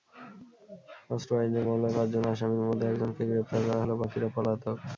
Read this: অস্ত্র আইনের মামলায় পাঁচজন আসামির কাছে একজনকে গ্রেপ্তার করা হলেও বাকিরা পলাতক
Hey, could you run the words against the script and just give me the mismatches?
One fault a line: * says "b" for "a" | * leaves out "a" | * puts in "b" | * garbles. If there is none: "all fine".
* says "মধ্যে" for "কাছে"